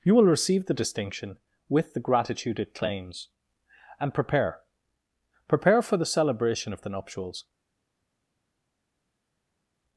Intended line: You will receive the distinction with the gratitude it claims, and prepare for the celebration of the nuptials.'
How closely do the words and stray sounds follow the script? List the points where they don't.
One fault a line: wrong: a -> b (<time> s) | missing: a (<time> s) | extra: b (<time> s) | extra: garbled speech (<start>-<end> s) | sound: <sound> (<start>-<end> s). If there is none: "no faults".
extra: prepare (5.5 s)